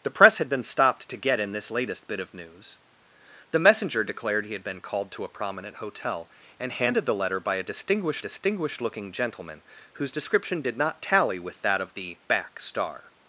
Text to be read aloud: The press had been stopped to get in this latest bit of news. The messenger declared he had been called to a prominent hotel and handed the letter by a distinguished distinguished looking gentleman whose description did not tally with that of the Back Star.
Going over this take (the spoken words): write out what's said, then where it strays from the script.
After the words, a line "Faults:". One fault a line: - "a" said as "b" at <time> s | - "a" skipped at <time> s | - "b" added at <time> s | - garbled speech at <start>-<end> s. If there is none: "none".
The press had been stopped to get in this latest bit of news. The messenger declared he had been called to a prominent hotel and handed the letter by a distinguished distinguished looking gentleman whose description did not tally with that of the Back Star.
Faults:
none